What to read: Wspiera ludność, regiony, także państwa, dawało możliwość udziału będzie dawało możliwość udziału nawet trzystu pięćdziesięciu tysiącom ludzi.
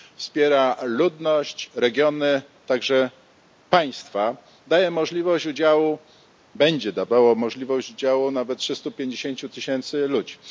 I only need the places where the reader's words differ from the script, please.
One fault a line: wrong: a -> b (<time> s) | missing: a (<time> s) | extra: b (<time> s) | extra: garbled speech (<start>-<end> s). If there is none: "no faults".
wrong: dawało -> daje (4.7 s)